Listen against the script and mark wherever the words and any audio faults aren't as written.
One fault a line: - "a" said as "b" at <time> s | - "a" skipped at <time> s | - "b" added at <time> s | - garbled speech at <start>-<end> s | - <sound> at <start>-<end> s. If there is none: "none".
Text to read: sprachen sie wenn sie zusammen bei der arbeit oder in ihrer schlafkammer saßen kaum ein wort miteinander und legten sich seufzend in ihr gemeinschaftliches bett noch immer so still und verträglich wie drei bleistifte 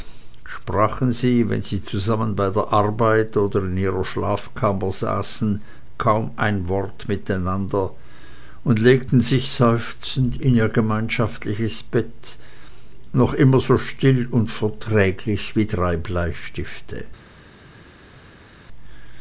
none